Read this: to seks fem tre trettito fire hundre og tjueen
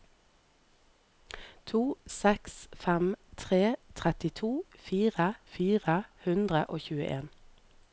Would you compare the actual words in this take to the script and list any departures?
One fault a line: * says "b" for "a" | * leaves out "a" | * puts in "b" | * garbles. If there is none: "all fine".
* puts in "fire"